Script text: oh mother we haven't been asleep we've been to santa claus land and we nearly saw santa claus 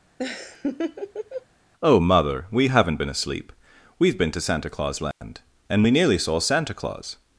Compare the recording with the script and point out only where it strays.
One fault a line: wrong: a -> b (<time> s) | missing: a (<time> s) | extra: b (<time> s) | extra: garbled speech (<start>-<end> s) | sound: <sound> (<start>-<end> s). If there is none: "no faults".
sound: laugh (0.2-1.5 s)
sound: dropout (5.1-5.2 s)